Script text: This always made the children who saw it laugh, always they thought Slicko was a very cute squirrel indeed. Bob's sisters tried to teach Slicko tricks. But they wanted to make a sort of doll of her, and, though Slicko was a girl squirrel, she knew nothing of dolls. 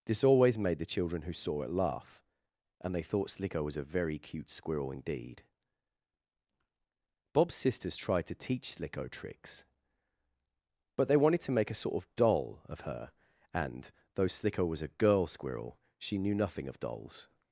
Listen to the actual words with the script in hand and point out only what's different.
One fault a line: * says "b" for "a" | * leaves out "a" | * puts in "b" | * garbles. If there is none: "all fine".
* says "and" for "always"